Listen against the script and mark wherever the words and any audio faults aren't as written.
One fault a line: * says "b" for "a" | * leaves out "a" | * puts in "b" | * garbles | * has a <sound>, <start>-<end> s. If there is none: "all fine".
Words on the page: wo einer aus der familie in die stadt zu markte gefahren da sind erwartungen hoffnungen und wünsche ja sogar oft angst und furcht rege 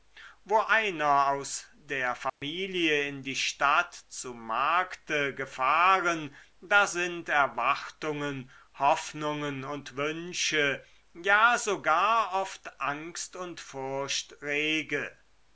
* has a dropout, 2.3-2.4 s